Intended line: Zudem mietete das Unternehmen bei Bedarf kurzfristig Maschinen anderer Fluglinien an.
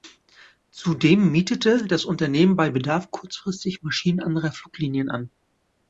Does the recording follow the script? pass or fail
pass